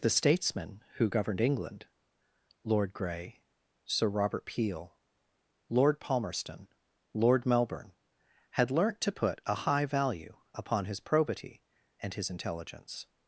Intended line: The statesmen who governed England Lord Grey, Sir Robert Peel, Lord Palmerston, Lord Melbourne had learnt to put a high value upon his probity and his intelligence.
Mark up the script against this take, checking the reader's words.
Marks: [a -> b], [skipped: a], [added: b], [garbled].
The statesmen who governed England Lord Grey, Sir Robert Peel, Lord Palmerston, Lord Melbourne had learnt to put a high value upon his probity and his intelligence.